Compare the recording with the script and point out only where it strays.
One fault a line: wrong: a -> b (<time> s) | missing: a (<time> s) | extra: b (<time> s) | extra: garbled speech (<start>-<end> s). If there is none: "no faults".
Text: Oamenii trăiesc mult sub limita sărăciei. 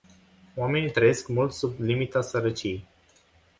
no faults